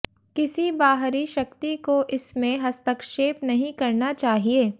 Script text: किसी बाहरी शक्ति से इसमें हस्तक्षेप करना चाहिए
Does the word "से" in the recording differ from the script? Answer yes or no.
yes